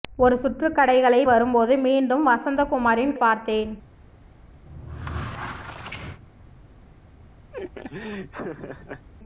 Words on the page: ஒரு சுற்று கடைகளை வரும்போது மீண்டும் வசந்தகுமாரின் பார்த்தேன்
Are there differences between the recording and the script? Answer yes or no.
no